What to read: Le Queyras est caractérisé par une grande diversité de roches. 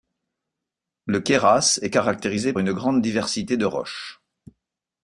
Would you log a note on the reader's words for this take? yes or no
yes